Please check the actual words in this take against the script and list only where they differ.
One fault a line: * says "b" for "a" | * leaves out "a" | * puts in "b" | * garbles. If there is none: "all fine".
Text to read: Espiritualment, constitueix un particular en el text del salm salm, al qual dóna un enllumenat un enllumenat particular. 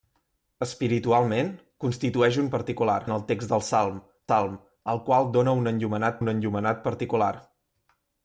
all fine